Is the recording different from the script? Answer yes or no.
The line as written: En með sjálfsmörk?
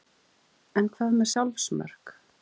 yes